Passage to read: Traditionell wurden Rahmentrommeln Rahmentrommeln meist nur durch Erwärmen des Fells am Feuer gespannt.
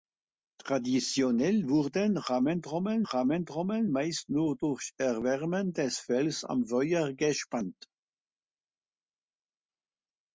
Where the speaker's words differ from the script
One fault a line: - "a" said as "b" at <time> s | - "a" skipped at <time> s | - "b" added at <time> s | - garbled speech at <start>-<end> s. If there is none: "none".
none